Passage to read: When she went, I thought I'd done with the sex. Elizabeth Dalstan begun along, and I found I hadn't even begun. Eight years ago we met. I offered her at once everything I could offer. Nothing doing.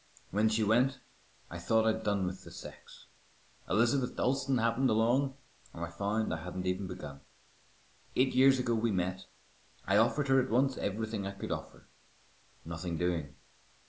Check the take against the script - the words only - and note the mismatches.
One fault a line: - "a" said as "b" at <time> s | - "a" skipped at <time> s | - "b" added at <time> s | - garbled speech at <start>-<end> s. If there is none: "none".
- "begun" said as "happened" at 4.6 s